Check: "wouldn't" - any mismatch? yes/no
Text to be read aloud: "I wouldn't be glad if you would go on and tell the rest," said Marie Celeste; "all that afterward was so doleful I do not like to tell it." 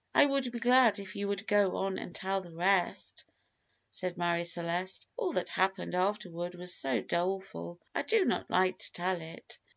yes